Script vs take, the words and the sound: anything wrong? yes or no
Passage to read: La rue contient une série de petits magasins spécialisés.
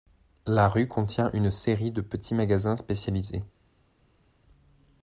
no